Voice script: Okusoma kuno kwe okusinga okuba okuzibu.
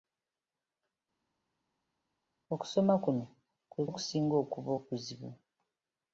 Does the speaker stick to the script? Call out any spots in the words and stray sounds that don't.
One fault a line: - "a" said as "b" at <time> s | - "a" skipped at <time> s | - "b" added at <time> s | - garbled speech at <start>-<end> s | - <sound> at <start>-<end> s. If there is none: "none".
none